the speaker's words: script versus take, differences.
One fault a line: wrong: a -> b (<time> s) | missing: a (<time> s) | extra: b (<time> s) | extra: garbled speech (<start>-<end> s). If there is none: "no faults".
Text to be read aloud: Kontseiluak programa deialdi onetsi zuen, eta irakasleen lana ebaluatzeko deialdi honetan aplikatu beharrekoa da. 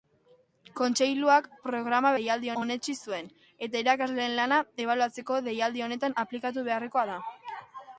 no faults